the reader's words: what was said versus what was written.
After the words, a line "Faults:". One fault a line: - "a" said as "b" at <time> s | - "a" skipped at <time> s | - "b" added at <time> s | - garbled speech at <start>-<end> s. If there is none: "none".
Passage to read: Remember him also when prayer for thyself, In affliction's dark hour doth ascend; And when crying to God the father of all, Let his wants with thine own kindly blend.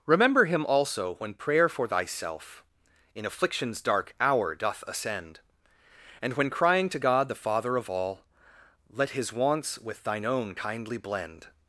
Remember him also when prayer for thyself, In affliction's dark hour doth ascend; And when crying to God the father of all, Let his wants with thine own kindly blend.
Faults:
none